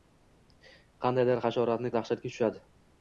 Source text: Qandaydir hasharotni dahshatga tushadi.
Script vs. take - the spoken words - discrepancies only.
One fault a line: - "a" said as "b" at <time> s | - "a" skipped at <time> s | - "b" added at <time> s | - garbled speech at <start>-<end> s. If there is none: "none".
none